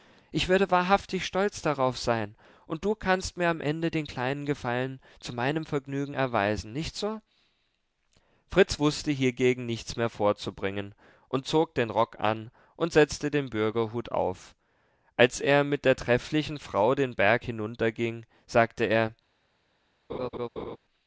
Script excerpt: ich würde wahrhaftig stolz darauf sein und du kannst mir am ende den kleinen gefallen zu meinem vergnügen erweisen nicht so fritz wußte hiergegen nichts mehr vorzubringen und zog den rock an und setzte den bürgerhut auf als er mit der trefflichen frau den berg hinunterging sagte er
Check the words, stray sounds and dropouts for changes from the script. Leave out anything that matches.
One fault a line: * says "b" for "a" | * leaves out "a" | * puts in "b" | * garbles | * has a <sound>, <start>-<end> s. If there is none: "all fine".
* has a laugh, 20.1-20.8 s